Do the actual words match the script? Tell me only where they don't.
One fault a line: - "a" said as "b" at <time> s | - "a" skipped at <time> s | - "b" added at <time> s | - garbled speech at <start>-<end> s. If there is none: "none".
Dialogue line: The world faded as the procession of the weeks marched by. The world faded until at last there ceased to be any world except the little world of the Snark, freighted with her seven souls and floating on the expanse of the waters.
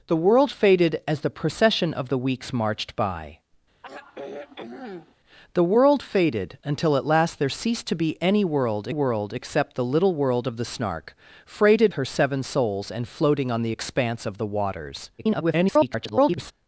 - "world" added at 8.9 s
- "with" skipped at 11.9 s
- garbled speech at 15.2-16.5 s